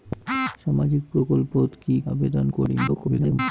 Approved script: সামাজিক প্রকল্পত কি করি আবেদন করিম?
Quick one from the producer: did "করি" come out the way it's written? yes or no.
no